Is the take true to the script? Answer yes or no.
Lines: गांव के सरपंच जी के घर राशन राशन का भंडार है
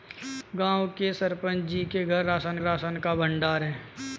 yes